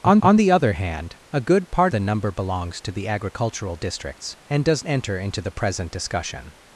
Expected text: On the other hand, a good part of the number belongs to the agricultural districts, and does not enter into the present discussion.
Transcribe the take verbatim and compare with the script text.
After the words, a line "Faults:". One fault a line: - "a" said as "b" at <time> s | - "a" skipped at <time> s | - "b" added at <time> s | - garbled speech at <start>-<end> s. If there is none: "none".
On on the other hand, a good part the number belongs to the agricultural districts, and does enter into the present discussion.
Faults:
- "on" added at 0.2 s
- "of" skipped at 1.9 s
- "not" skipped at 4.9 s